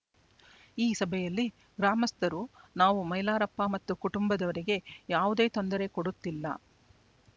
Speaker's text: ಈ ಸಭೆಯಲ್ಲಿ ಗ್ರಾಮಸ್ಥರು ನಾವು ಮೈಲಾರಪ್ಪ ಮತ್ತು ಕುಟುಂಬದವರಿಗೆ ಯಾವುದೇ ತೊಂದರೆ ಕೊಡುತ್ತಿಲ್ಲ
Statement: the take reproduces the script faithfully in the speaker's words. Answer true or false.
true